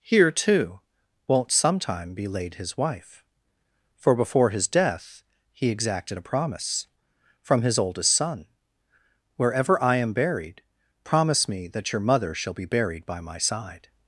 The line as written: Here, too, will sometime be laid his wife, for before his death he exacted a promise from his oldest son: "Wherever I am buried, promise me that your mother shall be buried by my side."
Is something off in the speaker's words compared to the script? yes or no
yes